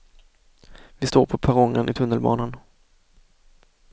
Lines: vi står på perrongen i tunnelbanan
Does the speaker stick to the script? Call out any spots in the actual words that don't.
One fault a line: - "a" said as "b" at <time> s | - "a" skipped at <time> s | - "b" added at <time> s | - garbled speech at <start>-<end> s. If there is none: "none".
none